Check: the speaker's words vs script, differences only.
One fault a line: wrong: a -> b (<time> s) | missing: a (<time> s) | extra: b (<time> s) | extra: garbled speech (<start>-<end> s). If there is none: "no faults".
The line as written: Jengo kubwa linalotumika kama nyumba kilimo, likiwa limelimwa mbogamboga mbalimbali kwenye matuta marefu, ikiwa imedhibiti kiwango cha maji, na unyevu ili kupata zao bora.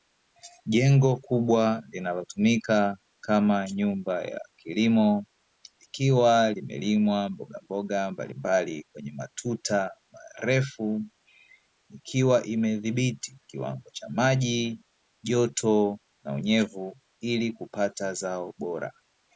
extra: ya (4.2 s)
extra: joto (15.2 s)